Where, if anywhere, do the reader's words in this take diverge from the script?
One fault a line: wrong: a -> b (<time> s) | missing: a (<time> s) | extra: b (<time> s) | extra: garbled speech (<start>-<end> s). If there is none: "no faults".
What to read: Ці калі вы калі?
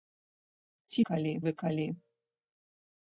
no faults